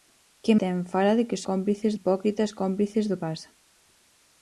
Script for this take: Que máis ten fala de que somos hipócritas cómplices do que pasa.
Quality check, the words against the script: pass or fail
fail